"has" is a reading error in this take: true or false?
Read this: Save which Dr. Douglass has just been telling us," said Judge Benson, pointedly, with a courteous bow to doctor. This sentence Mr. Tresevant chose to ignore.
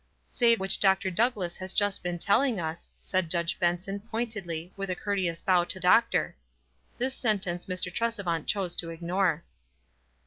false